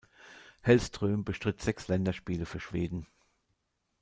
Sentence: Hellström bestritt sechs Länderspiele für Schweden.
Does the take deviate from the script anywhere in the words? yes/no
no